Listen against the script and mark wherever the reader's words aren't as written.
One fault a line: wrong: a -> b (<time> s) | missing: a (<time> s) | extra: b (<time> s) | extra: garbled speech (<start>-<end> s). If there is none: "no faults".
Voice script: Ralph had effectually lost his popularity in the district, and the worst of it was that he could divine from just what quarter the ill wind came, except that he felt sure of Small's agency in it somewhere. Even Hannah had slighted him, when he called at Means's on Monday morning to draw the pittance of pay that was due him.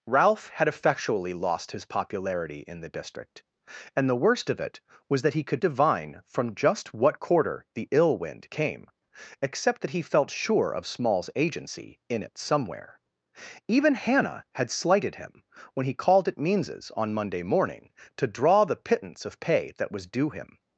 no faults